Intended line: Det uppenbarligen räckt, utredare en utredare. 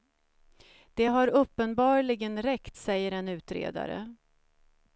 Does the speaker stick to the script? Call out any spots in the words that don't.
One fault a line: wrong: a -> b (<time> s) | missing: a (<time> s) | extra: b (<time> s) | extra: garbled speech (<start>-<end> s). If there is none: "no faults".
extra: har (1.0 s)
wrong: utredare -> säger (2.8 s)